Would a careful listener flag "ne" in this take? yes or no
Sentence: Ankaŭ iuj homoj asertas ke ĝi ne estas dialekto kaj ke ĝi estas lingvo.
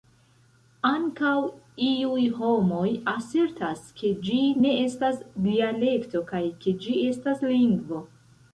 no